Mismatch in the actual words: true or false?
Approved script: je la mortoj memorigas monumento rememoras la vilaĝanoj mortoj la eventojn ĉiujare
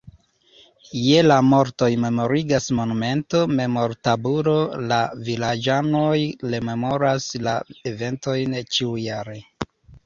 true